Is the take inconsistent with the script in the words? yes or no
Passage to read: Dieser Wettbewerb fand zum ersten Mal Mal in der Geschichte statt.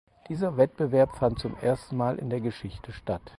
yes